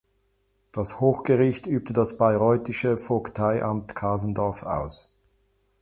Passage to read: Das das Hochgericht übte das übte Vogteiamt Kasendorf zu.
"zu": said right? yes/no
no